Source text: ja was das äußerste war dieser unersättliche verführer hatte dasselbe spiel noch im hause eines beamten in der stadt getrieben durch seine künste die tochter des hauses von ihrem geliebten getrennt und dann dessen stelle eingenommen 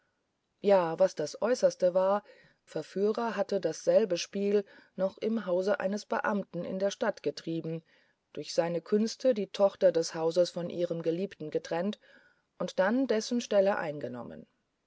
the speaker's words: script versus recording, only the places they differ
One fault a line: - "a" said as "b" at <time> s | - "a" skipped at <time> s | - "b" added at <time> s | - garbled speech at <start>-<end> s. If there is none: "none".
- "dieser unersättliche" skipped at 2.2 s